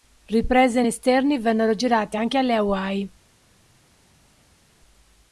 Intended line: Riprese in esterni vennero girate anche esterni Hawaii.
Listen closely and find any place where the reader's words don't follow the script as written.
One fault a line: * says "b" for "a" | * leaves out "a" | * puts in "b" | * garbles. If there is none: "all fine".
* says "alle" for "esterni"